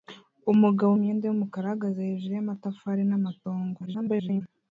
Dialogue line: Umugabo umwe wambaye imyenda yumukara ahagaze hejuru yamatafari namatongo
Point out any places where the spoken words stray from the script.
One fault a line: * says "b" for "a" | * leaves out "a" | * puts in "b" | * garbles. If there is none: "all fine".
* leaves out "umwe wambaye"
* garbles